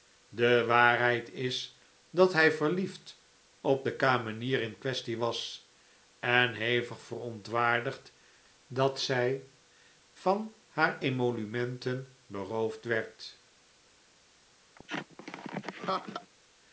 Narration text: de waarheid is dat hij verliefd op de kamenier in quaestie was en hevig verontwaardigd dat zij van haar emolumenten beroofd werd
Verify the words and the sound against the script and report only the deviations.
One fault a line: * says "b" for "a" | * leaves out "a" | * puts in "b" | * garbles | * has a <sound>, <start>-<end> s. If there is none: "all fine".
* has a laugh, 14.7-16.3 s